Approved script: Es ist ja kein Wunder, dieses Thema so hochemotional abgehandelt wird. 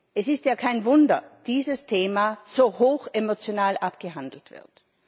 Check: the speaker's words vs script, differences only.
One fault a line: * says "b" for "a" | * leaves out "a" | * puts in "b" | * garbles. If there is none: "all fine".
all fine